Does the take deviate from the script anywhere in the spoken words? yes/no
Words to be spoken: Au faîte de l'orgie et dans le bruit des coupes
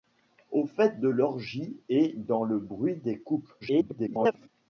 yes